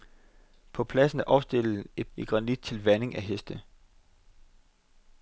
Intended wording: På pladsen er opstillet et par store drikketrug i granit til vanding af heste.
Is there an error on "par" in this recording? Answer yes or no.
yes